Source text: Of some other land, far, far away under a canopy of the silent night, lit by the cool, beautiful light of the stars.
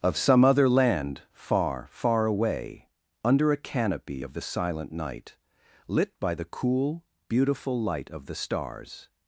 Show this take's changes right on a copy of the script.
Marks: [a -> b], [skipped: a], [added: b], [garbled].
Of some other land, far, far away under a canopy of the silent night, lit by the cool, beautiful light of the stars.